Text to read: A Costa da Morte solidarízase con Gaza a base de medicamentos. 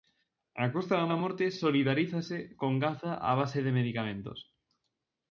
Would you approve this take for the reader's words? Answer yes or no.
no